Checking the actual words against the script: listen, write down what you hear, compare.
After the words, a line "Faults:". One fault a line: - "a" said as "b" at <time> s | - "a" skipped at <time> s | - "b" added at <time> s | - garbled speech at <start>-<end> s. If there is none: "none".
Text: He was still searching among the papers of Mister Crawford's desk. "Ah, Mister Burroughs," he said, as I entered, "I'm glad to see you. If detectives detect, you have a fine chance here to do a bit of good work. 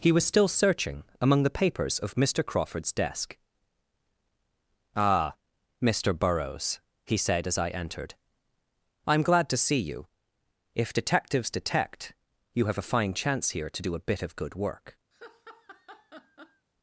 He was still searching among the papers of Mister Crawford's desk. "Ah, Mister Burroughs," he said, as I entered, "I'm glad to see you. If detectives detect, you have a fine chance here to do a bit of good work.
Faults:
none